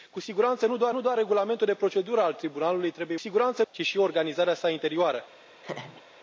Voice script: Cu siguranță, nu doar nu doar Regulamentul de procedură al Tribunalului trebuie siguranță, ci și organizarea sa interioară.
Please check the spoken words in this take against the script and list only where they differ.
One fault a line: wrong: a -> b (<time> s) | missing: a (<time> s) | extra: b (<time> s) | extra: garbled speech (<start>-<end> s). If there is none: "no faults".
no faults